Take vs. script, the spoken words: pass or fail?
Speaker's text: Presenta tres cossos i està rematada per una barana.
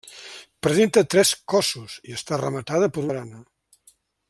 fail